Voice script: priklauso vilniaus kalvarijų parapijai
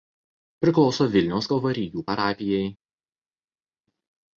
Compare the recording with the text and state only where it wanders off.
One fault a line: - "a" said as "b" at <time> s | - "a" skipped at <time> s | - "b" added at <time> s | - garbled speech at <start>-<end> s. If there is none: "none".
none